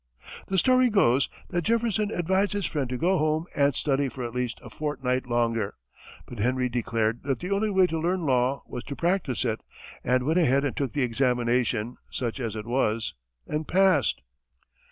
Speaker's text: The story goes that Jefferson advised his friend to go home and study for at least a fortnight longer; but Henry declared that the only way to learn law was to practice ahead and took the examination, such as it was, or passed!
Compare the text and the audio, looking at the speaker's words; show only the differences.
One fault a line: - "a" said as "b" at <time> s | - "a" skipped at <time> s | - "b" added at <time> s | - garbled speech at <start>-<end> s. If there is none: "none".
- "it and went" added at 9.5 s
- "or" said as "and" at 13.5 s